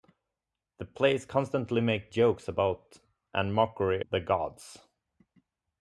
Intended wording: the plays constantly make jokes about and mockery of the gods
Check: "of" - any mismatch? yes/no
yes